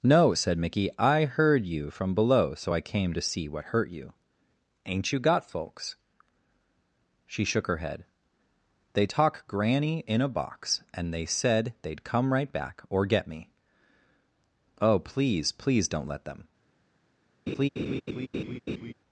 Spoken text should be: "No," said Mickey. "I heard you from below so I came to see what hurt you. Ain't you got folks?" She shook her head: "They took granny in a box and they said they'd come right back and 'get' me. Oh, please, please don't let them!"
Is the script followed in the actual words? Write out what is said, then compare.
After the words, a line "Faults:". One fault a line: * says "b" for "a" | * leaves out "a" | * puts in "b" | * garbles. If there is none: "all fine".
"No," said Mickey. "I heard you from below so I came to see what hurt you. Ain't you got folks?" She shook her head: "They talk granny in a box and they said they'd come right back or 'get' me. Oh, please, please don't let them!"
Faults:
* says "talk" for "took"
* says "or" for "and"